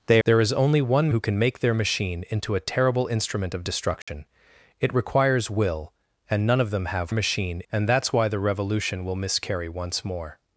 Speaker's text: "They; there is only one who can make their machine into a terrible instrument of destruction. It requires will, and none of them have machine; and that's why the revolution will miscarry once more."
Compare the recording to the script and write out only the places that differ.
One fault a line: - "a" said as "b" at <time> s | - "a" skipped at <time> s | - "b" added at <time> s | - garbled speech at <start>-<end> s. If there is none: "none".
none